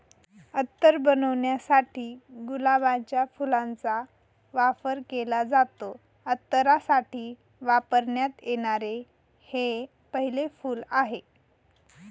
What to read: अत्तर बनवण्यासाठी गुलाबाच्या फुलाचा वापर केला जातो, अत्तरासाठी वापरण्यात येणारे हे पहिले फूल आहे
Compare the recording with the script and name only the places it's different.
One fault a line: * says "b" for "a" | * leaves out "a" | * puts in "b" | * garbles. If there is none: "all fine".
all fine